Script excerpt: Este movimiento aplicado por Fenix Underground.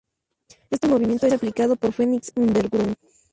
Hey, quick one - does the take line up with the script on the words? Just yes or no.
yes